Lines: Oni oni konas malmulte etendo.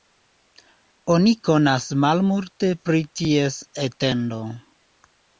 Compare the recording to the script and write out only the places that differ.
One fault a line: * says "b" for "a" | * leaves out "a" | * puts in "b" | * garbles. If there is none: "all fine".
* leaves out "oni"
* puts in "pri ties"